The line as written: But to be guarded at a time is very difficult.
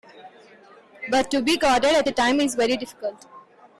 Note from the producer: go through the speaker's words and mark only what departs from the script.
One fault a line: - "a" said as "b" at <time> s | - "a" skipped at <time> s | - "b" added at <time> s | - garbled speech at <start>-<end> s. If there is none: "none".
none